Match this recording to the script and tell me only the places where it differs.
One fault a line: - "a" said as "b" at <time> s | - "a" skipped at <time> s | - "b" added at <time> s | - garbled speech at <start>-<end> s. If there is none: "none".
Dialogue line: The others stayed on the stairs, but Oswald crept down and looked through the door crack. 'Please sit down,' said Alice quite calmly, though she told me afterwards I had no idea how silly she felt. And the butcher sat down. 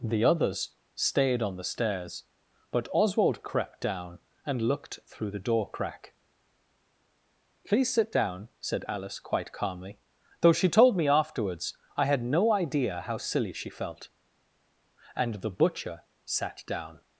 none